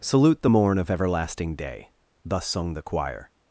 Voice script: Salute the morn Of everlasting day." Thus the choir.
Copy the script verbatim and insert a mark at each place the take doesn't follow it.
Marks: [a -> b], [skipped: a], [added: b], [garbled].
Salute the morn Of everlasting day." Thus [added: sung] the choir.